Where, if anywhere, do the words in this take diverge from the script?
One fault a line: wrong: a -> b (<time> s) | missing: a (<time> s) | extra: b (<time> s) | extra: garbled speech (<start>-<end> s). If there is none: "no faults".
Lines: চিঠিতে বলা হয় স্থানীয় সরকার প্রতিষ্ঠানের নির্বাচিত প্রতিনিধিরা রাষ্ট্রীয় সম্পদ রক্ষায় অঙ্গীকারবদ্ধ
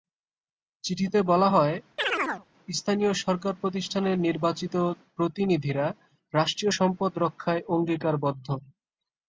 no faults